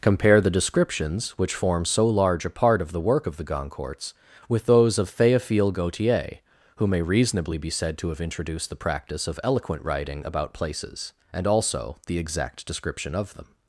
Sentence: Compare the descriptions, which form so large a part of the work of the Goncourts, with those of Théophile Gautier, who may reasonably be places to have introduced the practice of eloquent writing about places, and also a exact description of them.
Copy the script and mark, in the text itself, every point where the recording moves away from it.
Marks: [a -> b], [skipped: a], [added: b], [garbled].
Compare the descriptions, which form so large a part of the work of the Goncourts, with those of Théophile Gautier, who may reasonably be [places -> said] to have introduced the practice of eloquent writing about places, and also [a -> the] exact description of them.